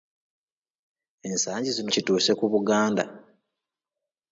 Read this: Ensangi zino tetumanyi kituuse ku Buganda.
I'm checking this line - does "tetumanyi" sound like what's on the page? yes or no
no